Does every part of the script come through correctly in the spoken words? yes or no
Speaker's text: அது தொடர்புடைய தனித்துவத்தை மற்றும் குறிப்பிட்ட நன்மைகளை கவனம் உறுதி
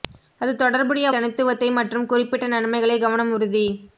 yes